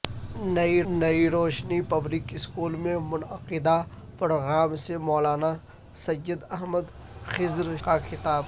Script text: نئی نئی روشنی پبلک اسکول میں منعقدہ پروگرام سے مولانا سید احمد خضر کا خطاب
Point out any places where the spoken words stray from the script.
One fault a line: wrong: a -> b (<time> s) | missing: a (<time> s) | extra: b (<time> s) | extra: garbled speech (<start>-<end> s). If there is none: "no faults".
no faults